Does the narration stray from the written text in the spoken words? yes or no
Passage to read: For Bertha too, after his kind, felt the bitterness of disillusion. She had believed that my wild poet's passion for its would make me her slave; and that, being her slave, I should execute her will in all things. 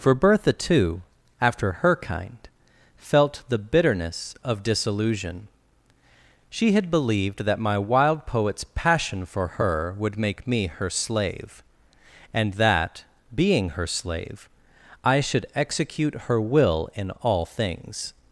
yes